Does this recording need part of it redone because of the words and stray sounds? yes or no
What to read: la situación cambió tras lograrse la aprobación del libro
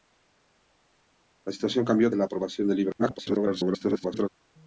yes